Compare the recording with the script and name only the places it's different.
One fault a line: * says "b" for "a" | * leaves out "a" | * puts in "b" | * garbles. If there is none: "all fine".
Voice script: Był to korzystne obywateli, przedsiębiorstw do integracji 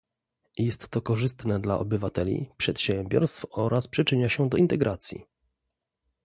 * says "Jest" for "Był"
* puts in "dla"
* puts in "oraz przyczynia się"